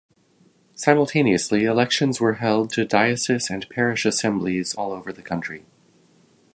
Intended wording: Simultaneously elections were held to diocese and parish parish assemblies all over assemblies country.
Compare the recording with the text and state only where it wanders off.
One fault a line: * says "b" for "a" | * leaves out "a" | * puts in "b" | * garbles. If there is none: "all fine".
* leaves out "parish"
* says "the" for "assemblies"